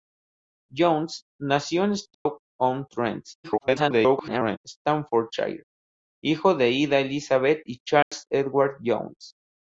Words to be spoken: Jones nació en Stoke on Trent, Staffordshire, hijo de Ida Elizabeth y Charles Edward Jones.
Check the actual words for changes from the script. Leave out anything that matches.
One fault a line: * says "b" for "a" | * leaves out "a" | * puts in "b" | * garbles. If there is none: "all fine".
* garbles